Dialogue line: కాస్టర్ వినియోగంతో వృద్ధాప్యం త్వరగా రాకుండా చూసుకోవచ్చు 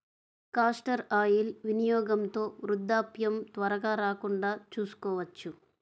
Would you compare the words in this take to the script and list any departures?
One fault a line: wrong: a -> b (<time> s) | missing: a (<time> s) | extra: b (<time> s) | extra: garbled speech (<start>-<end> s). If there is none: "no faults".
extra: ఆయిల్ (1.1 s)